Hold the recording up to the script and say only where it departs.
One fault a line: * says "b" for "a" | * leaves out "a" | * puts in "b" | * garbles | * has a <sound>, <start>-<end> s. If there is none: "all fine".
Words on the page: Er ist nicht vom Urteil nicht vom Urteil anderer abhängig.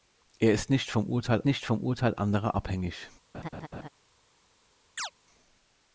* has a laugh, 3.3-3.9 s
* has a chirp, 5.0-5.1 s